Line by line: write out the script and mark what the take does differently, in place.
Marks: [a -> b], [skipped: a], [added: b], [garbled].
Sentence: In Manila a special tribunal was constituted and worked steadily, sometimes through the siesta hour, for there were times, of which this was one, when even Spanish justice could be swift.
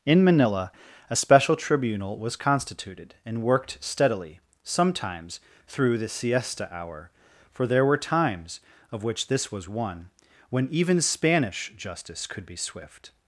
In Manila a special tribunal was constituted and worked steadily, sometimes through the siesta hour, for there were times, of which this was one, when even Spanish justice could be swift.